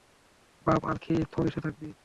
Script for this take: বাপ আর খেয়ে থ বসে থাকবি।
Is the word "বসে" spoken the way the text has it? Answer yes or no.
yes